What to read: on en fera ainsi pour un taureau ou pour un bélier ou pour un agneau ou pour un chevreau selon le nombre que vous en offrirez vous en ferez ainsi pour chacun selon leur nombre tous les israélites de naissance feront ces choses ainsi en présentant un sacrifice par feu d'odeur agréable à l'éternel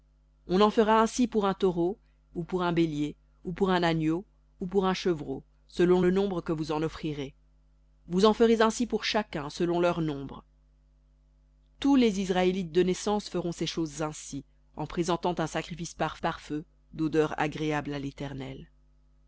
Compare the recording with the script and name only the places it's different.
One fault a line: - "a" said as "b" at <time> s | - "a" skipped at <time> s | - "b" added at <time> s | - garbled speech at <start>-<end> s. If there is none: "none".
- "par" added at 16.2 s